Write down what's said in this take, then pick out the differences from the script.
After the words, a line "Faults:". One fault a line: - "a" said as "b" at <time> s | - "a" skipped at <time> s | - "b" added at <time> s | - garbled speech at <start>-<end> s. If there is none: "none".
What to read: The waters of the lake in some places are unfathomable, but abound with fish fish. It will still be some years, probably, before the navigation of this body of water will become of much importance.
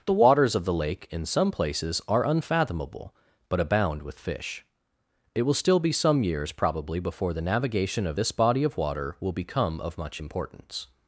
The waters of the lake in some places are unfathomable, but abound with fish. It will still be some years, probably, before the navigation of this body of water will become of much importance.
Faults:
- "fish" skipped at 4.7 s